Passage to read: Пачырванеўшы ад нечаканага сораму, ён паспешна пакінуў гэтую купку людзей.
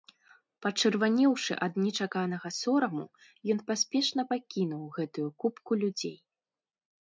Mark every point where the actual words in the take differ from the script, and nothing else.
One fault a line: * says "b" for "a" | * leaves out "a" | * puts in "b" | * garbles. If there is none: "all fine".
all fine